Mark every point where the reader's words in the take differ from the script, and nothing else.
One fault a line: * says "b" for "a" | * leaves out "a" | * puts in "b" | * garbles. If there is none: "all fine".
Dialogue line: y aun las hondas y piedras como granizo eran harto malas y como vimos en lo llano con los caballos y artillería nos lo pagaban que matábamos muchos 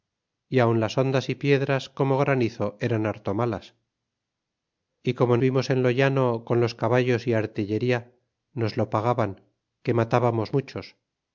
all fine